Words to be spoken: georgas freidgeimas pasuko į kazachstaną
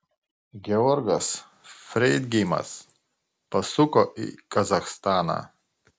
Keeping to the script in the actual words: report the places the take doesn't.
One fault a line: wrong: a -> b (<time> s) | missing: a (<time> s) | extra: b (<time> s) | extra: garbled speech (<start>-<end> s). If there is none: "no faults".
no faults